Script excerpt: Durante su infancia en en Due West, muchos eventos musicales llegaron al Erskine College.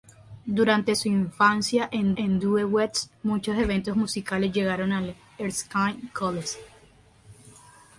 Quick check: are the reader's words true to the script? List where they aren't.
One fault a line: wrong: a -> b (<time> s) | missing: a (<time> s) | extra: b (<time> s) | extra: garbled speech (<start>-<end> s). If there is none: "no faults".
no faults